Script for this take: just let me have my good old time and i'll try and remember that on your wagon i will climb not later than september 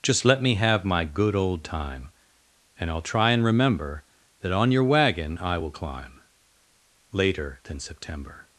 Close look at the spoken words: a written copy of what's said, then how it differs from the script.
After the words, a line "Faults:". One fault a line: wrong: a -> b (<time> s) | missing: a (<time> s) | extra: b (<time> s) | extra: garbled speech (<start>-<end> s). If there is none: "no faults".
just let me have my good old time and i'll try and remember that on your wagon i will climb later than september
Faults:
missing: not (6.2 s)